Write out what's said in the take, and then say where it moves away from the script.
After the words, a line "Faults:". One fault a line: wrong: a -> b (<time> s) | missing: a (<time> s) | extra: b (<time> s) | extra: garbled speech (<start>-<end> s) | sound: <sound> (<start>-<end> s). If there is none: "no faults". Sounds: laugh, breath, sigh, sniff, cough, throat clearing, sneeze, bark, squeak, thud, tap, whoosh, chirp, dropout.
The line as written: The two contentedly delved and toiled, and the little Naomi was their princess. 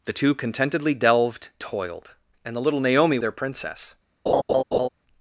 The two contentedly delved toiled, and the little Naomi their princess.
Faults:
missing: and (1.5 s)
missing: was (3.2 s)
sound: laugh (4.3-4.9 s)